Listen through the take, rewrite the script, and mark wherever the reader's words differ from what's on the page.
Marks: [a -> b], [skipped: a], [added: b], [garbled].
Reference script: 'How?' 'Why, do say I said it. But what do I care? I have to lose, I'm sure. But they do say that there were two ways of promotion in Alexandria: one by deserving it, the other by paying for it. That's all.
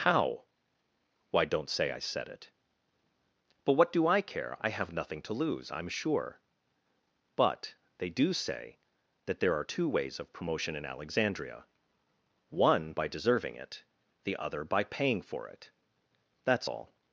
'How?' 'Why, [do -> don't] say I said it. But what do I care? I have [added: nothing] to lose, I'm sure. But they do say that there [were -> are] two ways of promotion in Alexandria: one by deserving it, the other by paying for it. That's all.